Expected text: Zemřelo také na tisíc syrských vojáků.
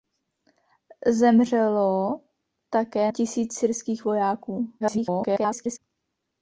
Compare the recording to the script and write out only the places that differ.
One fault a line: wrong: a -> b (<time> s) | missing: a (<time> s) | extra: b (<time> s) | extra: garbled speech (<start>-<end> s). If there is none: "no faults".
missing: na (3.1 s)
extra: garbled speech (4.8-5.8 s)